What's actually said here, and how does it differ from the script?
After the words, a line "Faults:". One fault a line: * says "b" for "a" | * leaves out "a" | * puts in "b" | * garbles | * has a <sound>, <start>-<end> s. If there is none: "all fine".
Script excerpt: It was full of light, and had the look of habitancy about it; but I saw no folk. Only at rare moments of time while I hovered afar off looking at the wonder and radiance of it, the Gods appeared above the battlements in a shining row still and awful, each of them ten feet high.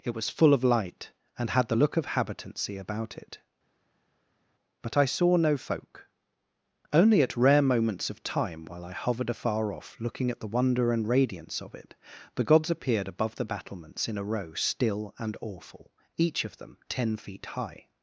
It was full of light, and had the look of habitancy about it; but I saw no folk. Only at rare moments of time while I hovered afar off looking at the wonder and radiance of it, the Gods appeared above the battlements in a row still and awful, each of them ten feet high.
Faults:
* leaves out "shining"